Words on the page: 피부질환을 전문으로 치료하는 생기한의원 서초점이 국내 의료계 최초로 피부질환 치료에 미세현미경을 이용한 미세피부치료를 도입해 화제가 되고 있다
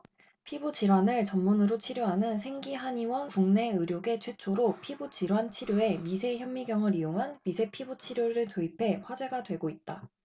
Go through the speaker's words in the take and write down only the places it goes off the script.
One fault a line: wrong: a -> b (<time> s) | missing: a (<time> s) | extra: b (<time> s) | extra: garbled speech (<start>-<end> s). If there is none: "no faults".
missing: 서초점이 (3.3 s)